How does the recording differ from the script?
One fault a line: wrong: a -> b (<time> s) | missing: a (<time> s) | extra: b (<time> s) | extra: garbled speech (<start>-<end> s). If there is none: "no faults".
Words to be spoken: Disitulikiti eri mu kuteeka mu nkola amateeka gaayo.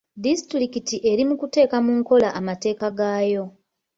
no faults